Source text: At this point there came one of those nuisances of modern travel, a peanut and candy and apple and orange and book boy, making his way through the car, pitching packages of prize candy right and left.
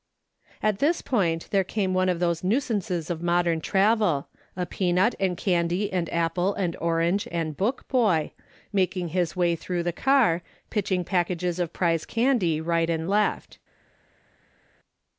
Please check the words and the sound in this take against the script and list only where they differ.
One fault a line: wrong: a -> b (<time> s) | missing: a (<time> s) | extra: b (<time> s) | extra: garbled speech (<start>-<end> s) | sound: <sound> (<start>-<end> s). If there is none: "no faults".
no faults